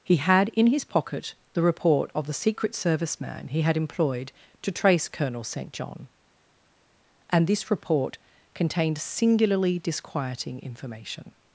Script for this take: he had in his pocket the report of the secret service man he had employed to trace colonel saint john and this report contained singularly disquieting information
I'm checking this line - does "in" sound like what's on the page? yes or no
yes